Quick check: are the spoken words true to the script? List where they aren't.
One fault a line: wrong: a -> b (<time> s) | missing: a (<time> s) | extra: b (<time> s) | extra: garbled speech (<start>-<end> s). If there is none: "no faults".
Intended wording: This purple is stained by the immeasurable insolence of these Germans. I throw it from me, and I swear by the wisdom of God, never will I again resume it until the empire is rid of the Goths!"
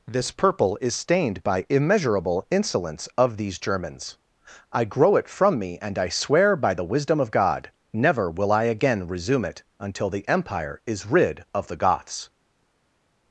missing: the (1.6 s)
wrong: throw -> grow (4.8 s)